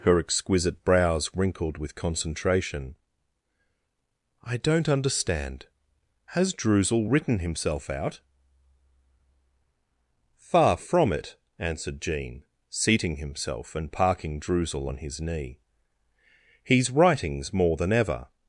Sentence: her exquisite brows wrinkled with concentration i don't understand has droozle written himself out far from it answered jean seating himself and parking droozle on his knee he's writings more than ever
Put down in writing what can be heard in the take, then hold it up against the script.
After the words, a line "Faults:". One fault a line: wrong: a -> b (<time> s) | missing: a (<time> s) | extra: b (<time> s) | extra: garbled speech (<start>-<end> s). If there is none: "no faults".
her exquisite brows wrinkled with concentration i don't understand has droozle written himself out far from it answered jean seating himself and parking droozle on his knee he's writings more than ever
Faults:
no faults